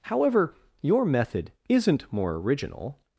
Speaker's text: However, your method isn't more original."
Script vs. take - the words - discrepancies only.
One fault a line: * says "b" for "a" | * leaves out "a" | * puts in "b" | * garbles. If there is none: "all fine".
all fine